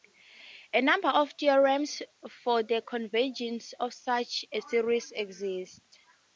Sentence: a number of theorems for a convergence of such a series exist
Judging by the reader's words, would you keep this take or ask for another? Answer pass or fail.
fail